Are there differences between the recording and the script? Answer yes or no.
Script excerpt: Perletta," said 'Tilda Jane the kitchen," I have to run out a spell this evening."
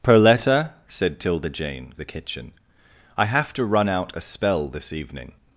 no